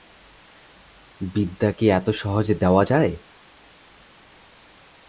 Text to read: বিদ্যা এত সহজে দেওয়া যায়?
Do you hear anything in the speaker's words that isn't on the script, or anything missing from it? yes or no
yes